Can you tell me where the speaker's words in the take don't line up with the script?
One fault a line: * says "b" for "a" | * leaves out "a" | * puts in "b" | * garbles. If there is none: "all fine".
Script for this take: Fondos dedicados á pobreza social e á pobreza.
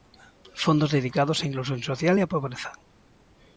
* says "inclusión" for "pobreza"